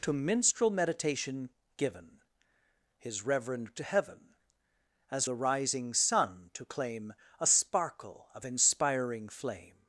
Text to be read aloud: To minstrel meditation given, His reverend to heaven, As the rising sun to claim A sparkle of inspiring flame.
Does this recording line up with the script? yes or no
yes